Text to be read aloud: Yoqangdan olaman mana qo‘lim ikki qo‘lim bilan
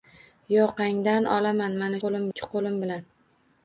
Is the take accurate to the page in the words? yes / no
yes